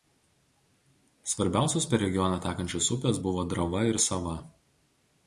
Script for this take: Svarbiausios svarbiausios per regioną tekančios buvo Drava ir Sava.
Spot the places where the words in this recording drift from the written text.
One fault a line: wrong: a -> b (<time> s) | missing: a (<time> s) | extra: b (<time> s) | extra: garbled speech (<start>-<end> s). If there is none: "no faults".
missing: svarbiausios (1.9 s)
extra: upės (3.0 s)